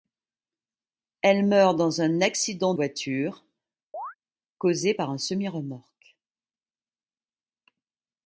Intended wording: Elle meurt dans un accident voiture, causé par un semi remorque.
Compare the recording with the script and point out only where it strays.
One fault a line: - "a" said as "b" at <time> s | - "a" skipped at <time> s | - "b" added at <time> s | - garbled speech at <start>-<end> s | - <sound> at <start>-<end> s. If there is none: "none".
- chirp at 3.9-4.1 s